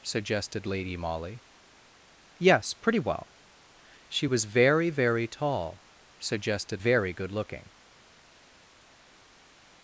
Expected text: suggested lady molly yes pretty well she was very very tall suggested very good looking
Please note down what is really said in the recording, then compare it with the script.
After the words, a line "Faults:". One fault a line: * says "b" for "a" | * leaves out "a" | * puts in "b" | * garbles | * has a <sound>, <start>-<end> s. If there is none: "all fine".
suggested lady molly yes pretty well she was very very tall suggested very good looking
Faults:
all fine